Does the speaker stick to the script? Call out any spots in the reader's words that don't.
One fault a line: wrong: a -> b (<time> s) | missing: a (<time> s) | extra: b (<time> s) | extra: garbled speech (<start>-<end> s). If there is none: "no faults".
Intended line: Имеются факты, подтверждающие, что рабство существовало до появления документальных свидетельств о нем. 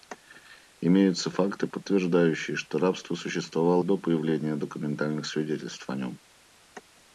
no faults